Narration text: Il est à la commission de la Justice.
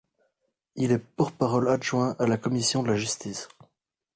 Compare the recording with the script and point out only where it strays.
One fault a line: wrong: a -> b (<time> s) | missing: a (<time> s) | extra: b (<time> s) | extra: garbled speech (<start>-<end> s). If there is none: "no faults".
extra: porte parole adjoint (1.0 s)